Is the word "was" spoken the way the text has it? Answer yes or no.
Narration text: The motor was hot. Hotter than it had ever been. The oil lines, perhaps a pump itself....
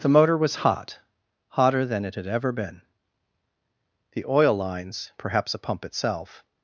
yes